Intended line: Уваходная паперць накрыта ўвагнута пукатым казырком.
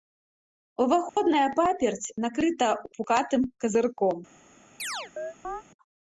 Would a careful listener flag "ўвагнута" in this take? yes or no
yes